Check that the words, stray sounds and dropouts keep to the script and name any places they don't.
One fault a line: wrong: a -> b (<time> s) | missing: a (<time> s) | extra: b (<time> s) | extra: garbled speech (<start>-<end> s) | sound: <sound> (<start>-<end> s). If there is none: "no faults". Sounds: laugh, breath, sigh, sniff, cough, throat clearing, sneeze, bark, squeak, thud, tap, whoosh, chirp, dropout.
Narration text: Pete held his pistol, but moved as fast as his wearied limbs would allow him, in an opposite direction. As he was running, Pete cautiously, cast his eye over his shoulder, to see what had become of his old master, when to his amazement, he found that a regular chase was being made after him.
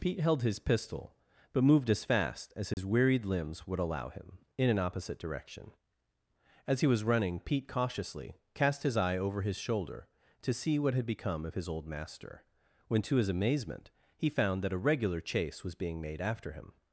sound: dropout (2.7-2.8 s)